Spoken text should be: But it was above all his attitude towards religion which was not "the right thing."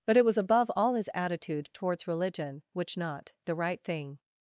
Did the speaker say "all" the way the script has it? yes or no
yes